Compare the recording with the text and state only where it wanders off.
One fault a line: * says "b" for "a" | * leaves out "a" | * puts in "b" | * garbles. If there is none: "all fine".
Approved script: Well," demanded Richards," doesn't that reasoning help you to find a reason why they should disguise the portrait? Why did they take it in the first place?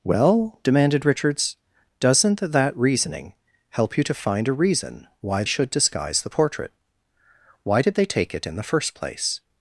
* leaves out "they"